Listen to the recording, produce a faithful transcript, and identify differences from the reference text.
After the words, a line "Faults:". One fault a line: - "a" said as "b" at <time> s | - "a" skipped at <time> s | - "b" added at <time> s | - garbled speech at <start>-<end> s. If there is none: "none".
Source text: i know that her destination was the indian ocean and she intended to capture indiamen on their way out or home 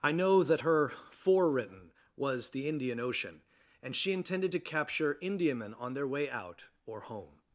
i know that her forewritten was the indian ocean and she intended to capture indiamen on their way out or home
Faults:
- "destination" said as "forewritten" at 0.9 s